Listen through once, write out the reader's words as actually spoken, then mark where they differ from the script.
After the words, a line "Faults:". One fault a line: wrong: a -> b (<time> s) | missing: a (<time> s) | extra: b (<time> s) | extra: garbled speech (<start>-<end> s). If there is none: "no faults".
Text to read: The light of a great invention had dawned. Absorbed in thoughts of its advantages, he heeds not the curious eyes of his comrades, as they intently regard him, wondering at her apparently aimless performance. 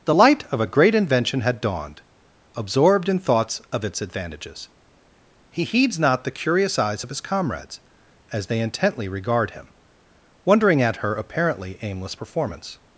The light of a great invention had dawned. Absorbed in thoughts of its advantages, he heeds not the curious eyes of his comrades, as they intently regard him, wondering at her apparently aimless performance.
Faults:
no faults